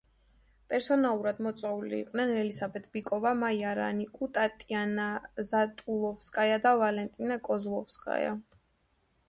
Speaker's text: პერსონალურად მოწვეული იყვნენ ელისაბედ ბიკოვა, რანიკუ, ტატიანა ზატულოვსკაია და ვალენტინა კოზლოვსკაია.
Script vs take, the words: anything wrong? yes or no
yes